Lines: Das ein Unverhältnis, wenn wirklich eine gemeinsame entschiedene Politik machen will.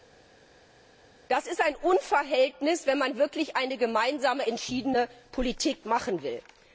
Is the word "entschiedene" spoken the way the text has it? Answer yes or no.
yes